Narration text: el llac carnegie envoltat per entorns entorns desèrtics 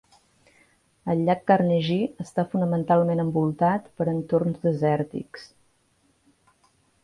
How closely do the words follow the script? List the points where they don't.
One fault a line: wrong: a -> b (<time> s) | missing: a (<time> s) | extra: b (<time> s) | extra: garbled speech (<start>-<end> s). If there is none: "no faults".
extra: està fonamentalment (2.3 s)
missing: entorns (4.7 s)